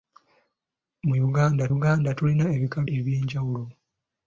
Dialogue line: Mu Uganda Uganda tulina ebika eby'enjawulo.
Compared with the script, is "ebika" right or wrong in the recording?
right